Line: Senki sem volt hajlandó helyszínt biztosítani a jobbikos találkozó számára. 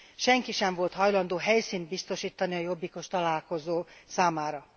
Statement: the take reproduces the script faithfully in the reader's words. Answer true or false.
true